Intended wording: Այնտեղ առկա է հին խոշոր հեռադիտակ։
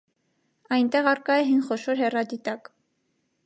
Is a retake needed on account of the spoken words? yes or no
no